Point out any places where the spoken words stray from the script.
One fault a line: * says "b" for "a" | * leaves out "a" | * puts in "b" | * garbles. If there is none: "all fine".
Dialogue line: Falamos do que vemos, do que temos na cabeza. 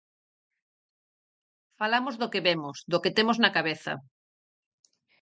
all fine